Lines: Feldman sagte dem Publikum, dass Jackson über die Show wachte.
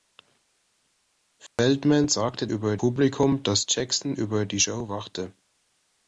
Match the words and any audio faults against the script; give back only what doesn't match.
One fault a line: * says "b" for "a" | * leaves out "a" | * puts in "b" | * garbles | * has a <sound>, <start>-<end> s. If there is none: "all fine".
* has a dropout, 1.5-1.6 s
* says "über" for "dem"